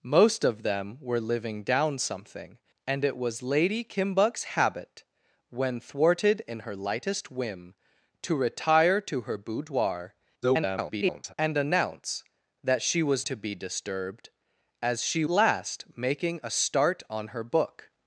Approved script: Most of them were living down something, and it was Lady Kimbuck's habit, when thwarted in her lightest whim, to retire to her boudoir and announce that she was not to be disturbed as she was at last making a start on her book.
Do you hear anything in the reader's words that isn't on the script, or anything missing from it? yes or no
yes